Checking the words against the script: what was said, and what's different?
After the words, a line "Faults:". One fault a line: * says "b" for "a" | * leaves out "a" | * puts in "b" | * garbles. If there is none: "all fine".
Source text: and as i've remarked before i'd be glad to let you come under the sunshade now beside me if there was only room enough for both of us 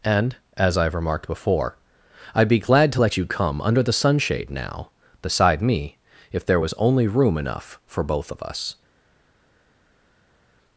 and as i've remarked before i'd be glad to let you come under the sunshade now beside me if there was only room enough for both of us
Faults:
all fine